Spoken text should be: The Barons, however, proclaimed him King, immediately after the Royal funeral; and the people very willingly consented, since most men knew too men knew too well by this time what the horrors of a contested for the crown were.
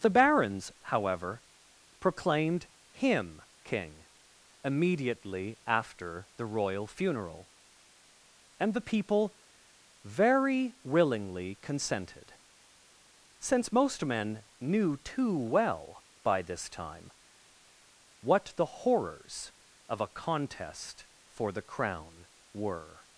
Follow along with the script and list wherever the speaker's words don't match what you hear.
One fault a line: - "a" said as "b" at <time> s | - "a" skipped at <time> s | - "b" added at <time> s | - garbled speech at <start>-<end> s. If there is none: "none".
- "men knew too" skipped at 15.4 s
- "contested" said as "contest" at 20.1 s